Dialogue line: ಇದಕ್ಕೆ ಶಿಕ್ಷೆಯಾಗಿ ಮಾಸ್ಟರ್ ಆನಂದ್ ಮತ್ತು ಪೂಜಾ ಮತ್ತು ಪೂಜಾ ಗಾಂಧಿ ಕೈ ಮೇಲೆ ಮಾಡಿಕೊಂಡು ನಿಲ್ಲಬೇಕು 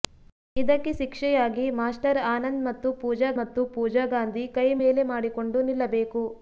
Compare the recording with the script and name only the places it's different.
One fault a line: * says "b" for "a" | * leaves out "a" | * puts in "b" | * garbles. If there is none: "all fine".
all fine